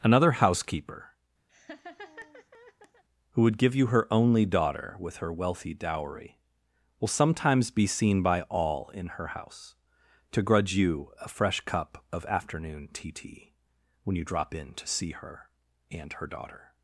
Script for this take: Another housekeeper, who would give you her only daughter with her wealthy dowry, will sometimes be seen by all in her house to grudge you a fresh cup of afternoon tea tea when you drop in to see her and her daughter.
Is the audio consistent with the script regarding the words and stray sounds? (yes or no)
no